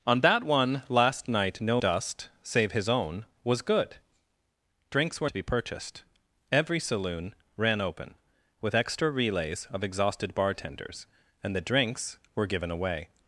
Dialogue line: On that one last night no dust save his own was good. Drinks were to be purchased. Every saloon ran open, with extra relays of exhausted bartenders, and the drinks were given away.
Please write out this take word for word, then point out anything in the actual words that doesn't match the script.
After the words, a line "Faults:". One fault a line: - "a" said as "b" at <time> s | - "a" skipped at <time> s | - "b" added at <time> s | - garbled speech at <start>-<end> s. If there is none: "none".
On that one last night no dust save his own was good. Drinks were to be purchased. Every saloon ran open, with extra relays of exhausted bartenders, and the drinks were given away.
Faults:
none